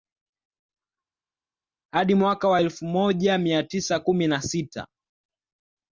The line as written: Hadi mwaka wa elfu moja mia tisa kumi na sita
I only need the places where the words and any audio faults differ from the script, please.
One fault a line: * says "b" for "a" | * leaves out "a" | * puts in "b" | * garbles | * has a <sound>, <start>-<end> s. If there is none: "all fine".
all fine